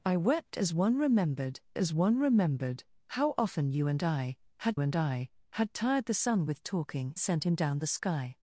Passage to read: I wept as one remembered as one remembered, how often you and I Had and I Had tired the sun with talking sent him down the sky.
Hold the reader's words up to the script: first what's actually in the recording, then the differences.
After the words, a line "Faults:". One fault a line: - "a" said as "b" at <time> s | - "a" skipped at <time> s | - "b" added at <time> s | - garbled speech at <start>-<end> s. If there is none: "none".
I wept as one remembered as one remembered, how often you and I Had and I Had tired the sun with talking sent him down the sky.
Faults:
none